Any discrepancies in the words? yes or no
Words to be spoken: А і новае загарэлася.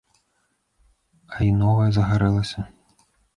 no